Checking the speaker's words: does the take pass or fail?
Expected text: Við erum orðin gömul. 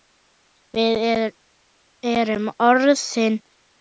pass